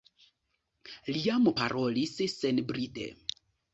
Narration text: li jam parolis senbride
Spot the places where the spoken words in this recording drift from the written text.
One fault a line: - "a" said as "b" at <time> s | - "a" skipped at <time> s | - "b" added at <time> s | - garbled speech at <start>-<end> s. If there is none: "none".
none